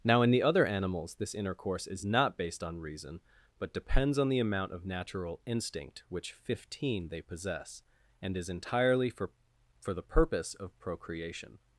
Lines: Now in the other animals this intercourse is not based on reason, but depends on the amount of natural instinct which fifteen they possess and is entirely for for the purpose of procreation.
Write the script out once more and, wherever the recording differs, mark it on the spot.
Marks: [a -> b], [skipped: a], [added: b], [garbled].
Now in the other animals this intercourse is not based on reason, but depends on the amount of natural instinct which fifteen they possess and is entirely for for the purpose of procreation.